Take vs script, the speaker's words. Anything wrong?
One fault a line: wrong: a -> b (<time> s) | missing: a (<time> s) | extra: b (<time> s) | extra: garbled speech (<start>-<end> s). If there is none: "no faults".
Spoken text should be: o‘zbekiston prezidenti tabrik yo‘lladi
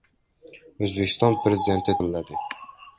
missing: tabrik (2.0 s)